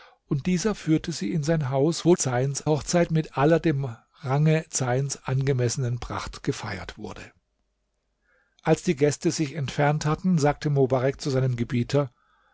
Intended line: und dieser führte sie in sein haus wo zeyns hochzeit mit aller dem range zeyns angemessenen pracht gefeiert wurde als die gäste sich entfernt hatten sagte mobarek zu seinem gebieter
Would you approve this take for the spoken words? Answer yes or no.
yes